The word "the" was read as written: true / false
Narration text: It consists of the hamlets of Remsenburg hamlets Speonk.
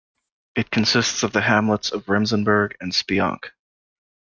true